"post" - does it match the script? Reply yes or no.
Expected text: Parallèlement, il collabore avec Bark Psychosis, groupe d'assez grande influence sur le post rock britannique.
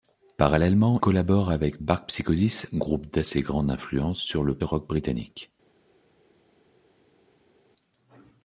no